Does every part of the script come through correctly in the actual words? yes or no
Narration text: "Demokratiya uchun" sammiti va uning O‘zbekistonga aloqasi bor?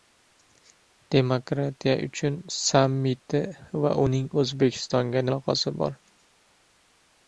yes